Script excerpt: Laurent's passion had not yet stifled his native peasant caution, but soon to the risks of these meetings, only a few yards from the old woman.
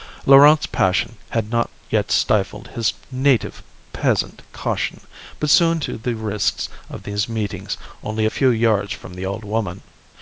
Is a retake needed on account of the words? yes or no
no